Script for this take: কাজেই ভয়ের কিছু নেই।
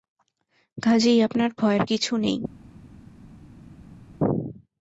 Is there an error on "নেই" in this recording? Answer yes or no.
no